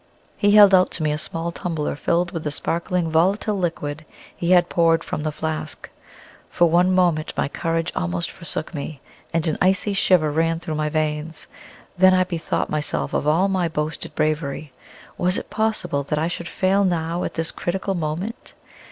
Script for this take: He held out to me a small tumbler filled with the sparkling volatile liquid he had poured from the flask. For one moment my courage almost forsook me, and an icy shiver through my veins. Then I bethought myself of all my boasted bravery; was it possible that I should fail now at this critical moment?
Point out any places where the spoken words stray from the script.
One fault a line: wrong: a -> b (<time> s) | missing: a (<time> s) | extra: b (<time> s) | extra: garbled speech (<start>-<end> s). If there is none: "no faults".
extra: ran (10.3 s)